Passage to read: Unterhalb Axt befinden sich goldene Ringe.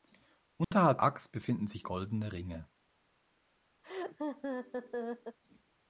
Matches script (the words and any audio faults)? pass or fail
fail